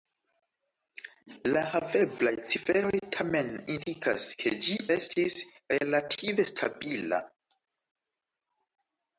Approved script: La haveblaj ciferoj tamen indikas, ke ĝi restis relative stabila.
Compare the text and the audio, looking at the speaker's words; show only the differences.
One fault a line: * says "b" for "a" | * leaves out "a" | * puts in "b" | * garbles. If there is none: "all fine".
all fine